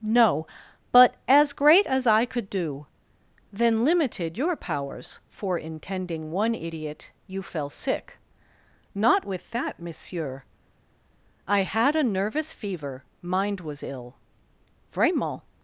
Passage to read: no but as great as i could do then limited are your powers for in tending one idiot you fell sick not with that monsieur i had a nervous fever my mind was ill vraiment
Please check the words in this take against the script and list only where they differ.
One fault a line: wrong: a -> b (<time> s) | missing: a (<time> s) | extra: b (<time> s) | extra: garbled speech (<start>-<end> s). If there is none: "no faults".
missing: are (4.3 s)
missing: my (13.0 s)